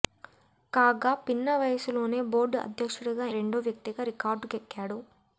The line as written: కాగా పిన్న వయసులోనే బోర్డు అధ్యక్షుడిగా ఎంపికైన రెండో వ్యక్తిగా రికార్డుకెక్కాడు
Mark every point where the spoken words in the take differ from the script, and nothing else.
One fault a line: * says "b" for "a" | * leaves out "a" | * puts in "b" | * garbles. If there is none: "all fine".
* leaves out "ఎంపికైన"